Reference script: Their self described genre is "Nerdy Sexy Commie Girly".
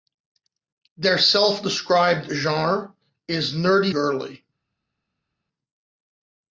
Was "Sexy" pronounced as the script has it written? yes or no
no